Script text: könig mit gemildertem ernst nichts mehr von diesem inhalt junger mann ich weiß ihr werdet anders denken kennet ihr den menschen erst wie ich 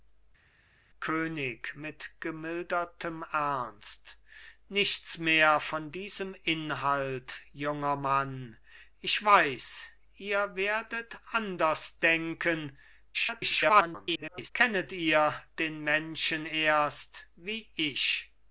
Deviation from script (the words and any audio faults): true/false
true